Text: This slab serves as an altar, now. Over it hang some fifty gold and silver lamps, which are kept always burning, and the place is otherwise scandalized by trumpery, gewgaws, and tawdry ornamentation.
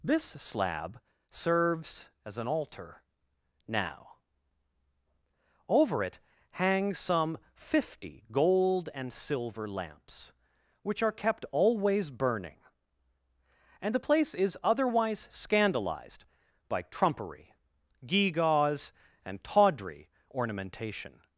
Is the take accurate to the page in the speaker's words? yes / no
yes